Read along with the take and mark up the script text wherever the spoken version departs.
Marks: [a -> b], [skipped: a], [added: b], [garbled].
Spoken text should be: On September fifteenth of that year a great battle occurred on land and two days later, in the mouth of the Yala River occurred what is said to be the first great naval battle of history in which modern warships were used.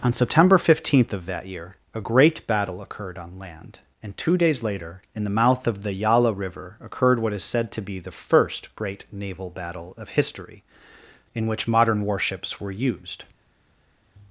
On September fifteenth of that year a great battle occurred on land and two days later, in the mouth of the Yala River occurred what is said to be the first great naval battle of history in which modern warships were used.